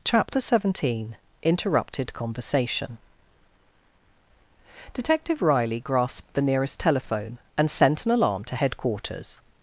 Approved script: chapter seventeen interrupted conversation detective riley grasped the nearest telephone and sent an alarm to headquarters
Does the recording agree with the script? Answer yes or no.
yes